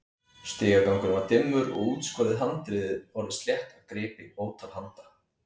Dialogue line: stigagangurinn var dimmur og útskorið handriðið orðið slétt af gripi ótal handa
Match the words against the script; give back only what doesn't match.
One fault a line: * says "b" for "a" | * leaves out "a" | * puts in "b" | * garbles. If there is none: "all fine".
all fine